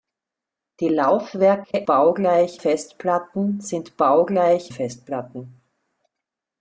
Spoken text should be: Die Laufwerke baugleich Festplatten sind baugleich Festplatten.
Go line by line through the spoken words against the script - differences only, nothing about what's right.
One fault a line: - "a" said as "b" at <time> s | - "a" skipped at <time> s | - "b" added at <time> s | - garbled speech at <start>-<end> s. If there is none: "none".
none